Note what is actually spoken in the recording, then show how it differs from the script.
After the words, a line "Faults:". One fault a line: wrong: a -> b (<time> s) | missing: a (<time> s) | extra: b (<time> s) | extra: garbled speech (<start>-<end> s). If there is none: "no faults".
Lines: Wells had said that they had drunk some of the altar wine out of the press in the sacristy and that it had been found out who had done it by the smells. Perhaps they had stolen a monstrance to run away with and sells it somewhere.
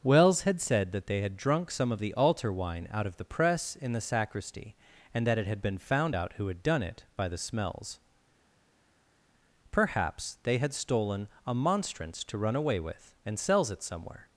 Wells had said that they had drunk some of the altar wine out of the press in the sacristy and that it had been found out who had done it by the smells. Perhaps they had stolen a monstrance to run away with and sells it somewhere.
Faults:
no faults